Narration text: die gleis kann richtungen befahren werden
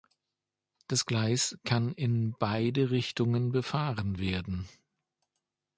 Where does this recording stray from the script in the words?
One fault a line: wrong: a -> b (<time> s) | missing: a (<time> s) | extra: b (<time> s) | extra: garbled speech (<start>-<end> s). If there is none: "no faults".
wrong: die -> das (0.9 s)
extra: in beide (1.9 s)